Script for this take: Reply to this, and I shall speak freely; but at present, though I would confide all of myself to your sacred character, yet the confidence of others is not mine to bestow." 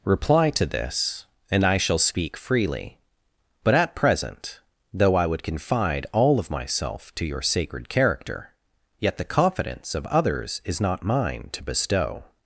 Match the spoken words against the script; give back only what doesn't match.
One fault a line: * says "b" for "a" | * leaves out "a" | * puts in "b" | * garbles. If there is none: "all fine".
all fine